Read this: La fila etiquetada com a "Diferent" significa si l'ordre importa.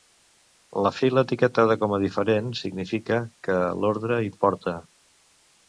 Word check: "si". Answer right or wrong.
wrong